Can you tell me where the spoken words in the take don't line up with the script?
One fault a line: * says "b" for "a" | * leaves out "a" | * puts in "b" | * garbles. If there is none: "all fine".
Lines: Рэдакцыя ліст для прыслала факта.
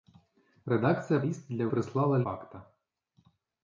all fine